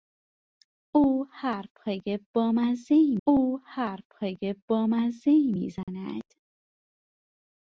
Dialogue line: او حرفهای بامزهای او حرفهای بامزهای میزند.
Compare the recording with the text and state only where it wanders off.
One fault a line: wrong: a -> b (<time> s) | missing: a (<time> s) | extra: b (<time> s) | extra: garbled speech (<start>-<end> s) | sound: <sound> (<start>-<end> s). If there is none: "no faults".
sound: dropout (5.8-5.9 s)